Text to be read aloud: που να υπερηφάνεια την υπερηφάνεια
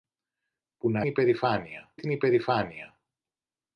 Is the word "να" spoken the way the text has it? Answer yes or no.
yes